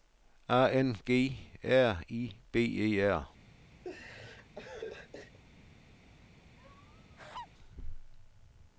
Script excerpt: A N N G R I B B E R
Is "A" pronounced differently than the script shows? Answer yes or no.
no